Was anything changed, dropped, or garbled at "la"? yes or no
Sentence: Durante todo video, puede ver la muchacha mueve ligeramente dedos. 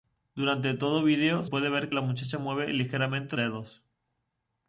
no